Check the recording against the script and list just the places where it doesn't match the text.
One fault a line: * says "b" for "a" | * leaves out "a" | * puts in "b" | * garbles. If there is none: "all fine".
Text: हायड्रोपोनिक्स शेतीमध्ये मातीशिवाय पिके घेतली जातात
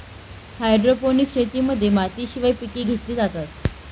all fine